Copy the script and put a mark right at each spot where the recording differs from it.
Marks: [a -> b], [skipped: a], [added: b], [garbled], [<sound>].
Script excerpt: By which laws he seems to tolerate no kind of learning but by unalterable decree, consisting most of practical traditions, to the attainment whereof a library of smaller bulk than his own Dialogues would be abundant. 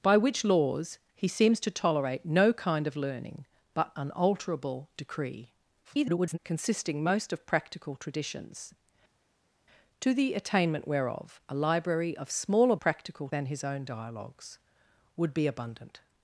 By which laws he seems to tolerate no kind of learning but [skipped: by] unalterable decree, [garbled] consisting most of practical traditions, to the attainment whereof a library of smaller [bulk -> practical] than his own Dialogues would be abundant.